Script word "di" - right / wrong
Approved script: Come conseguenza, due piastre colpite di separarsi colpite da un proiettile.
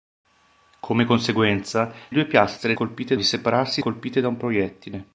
right